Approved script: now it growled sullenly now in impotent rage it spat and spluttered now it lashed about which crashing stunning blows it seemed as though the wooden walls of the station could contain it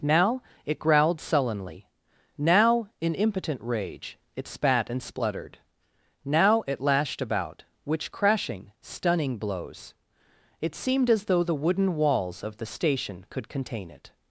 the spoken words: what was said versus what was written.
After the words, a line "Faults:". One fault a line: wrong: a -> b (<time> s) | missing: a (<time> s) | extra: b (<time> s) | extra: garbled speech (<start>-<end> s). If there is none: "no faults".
now it growled sullenly now in impotent rage it spat and spluttered now it lashed about which crashing stunning blows it seemed as though the wooden walls of the station could contain it
Faults:
no faults